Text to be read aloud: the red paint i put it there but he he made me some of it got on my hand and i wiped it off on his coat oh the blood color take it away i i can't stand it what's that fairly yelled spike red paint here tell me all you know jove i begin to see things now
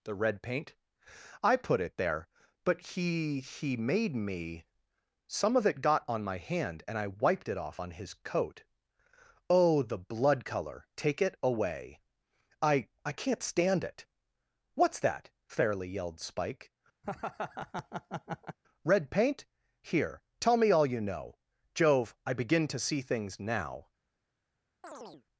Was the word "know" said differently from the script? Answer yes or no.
no